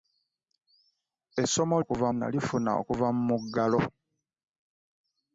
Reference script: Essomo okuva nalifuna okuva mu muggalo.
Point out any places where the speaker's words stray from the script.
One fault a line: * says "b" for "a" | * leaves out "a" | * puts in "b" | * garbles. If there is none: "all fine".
all fine